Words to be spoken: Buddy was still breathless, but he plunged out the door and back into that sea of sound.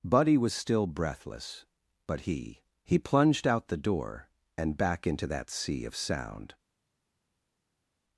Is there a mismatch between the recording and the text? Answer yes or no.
yes